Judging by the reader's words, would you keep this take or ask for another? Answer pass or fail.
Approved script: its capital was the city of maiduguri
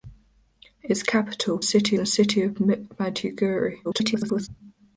fail